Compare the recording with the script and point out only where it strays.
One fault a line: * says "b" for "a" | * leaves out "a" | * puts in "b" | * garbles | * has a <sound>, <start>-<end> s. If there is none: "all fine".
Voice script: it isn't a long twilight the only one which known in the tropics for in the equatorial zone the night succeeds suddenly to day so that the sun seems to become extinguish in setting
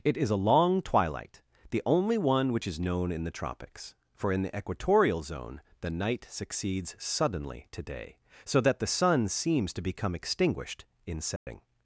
* says "is" for "isn't"
* puts in "is"
* says "extinguished" for "extinguish"
* has a dropout, 11.4-11.5 s